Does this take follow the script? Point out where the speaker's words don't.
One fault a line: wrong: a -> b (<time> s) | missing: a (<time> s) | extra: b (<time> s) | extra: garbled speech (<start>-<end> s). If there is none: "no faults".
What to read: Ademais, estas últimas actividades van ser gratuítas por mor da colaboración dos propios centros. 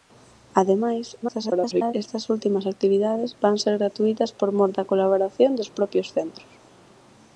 extra: garbled speech (1.2-1.9 s)